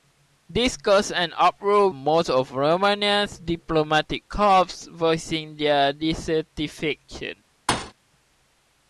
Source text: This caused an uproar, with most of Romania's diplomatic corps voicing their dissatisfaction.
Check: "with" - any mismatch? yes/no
yes